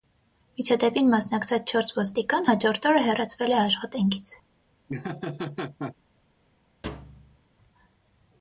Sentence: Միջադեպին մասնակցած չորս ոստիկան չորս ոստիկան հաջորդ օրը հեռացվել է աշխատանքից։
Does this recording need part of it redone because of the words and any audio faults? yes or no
yes